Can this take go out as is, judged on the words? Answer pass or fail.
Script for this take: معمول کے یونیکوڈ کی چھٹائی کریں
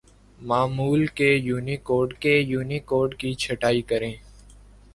fail